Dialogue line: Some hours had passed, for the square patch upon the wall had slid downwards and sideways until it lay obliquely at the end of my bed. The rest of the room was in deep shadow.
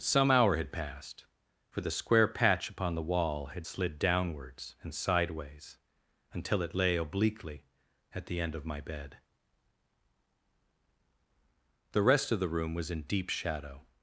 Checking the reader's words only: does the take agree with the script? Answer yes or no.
no